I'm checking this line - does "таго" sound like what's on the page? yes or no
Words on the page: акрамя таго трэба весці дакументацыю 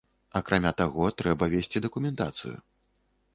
yes